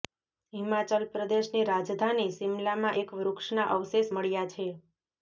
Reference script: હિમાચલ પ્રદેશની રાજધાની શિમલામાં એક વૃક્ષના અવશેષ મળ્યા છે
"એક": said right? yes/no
yes